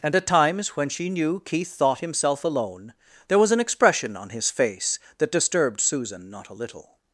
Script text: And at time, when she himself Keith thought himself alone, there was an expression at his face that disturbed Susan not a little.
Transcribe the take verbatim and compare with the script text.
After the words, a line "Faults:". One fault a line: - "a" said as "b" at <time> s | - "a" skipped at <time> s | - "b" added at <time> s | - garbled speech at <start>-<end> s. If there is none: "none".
And at times, when she knew Keith thought himself alone, there was an expression on his face that disturbed Susan not a little.
Faults:
- "time" said as "times" at 0.3 s
- "himself" said as "knew" at 1.1 s
- "at" said as "on" at 4.2 s